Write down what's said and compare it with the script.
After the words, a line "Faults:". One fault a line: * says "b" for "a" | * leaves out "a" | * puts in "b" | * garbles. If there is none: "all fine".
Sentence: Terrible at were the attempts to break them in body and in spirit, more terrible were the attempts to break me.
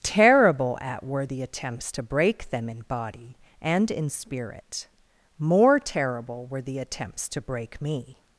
Terrible at were the attempts to break them in body and in spirit, more terrible were the attempts to break me.
Faults:
all fine